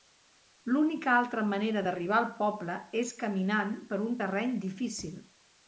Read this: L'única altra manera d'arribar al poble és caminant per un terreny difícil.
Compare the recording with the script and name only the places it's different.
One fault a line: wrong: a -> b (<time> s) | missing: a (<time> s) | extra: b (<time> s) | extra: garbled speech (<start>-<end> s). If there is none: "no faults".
no faults